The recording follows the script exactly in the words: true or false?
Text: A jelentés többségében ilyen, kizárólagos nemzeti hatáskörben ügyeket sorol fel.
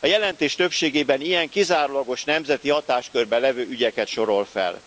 false